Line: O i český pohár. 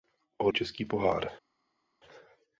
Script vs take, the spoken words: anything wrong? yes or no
no